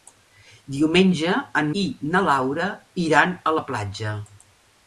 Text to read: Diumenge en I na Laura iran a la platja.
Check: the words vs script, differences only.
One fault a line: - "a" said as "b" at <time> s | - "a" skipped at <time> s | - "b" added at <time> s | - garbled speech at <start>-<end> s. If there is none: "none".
none